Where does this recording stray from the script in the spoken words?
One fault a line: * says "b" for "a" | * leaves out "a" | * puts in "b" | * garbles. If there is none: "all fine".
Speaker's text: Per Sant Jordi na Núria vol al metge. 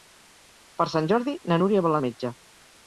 all fine